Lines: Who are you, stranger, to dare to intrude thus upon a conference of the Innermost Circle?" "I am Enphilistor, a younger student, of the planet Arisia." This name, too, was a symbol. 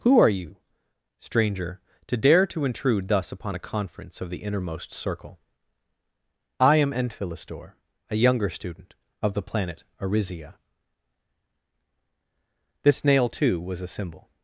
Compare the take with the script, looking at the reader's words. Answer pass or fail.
fail